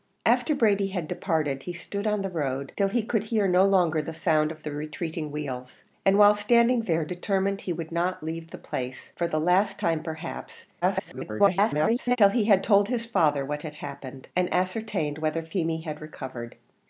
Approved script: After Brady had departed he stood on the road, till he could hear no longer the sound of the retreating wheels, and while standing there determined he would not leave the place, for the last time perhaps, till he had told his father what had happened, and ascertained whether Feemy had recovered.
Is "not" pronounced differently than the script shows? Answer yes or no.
no